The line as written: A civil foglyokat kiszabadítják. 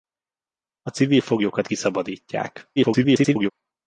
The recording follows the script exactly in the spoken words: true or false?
false